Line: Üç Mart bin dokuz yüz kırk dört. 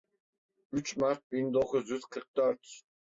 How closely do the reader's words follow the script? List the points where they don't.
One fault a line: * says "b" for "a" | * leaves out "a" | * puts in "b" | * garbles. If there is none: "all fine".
all fine